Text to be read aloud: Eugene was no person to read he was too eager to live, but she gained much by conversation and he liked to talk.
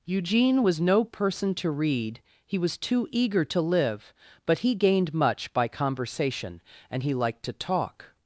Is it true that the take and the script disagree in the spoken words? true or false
true